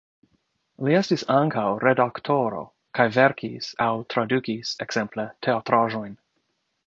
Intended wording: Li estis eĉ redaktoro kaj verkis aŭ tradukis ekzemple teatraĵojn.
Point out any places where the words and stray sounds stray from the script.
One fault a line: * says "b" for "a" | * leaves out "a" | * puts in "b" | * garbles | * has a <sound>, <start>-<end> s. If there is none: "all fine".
* says "ankaŭ" for "eĉ"